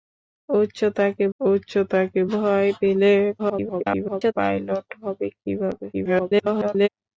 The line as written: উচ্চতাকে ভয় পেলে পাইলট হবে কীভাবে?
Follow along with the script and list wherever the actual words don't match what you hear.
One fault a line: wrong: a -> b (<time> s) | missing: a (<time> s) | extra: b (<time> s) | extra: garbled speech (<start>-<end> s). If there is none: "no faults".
extra: উচ্চতাকে (1.4 s)
extra: garbled speech (3.4-4.3 s)
extra: garbled speech (5.9-6.9 s)